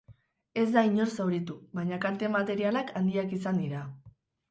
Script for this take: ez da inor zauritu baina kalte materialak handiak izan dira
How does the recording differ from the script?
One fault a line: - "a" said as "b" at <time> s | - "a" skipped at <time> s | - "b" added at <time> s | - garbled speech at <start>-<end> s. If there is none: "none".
none